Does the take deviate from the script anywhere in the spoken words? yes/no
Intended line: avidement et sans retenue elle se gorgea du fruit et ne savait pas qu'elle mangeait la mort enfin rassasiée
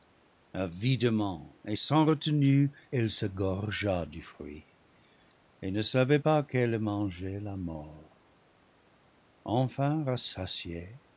no